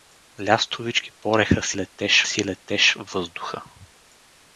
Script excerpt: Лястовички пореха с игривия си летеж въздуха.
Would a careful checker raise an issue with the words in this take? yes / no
yes